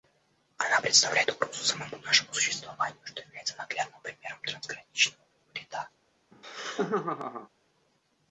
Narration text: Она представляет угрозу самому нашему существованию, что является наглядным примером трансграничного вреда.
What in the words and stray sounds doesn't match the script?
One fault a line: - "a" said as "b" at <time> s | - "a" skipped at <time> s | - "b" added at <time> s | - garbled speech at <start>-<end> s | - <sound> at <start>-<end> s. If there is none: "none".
- laugh at 6.3-7.5 s